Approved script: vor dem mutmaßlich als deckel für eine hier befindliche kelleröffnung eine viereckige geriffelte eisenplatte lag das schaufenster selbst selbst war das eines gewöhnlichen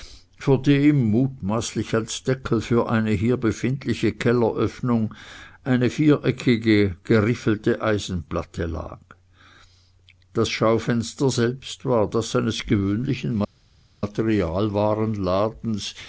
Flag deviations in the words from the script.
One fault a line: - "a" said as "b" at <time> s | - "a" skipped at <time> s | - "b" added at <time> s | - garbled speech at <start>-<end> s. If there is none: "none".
- "selbst" skipped at 11.8 s